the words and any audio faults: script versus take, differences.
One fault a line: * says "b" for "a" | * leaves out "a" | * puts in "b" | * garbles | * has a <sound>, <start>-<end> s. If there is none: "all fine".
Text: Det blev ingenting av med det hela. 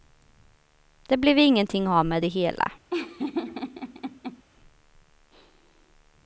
* has a laugh, 2.9-4.4 s